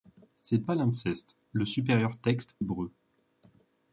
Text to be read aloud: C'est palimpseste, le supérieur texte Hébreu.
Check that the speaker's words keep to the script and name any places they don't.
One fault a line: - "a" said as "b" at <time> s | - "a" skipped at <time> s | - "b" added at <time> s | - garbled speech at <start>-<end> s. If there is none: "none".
none